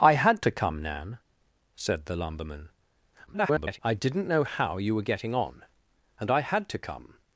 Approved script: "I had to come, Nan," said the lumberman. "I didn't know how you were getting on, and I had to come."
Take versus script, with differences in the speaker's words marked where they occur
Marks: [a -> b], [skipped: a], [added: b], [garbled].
"I had to come, Nan," said the lumberman. [garbled] "I didn't know how you were getting on, and I had to come."